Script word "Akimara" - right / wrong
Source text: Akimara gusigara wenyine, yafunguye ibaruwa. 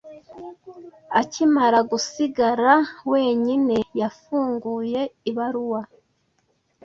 right